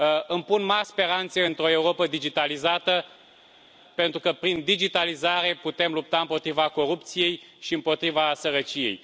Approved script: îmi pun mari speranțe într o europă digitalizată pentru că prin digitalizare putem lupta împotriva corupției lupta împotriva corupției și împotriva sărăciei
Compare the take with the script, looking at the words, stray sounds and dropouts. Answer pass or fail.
fail